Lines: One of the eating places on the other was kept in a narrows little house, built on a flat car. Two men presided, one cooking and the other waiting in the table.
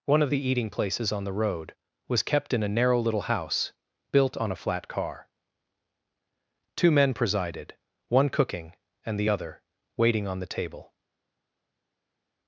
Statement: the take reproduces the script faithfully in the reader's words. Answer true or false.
false